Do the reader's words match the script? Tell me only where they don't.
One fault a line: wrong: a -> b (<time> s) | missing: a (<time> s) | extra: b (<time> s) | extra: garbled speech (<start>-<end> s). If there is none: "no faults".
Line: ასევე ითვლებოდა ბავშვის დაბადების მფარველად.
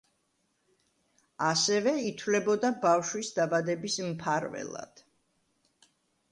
no faults